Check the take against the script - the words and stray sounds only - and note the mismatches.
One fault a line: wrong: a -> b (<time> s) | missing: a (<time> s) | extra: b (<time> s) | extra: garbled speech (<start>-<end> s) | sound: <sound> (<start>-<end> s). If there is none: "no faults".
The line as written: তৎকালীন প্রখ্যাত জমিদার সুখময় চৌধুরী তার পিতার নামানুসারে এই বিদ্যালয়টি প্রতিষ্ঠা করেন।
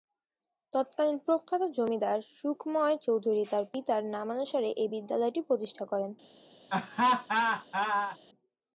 sound: laugh (6.7-8.2 s)